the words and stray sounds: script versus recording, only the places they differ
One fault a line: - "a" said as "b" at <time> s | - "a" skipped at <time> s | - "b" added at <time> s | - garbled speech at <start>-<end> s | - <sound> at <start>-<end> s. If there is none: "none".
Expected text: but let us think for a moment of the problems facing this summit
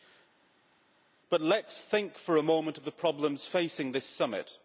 none